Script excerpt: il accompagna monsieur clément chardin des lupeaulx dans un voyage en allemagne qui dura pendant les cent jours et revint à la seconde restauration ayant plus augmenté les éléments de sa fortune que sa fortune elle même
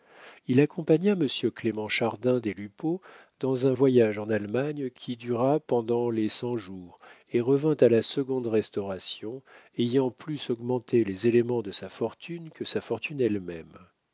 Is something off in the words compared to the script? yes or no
no